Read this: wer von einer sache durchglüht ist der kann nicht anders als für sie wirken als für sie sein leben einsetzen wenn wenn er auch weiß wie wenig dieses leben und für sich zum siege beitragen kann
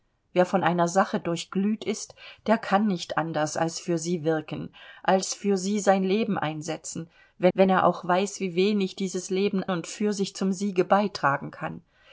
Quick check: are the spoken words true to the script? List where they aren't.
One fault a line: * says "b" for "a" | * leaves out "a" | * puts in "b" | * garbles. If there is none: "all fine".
all fine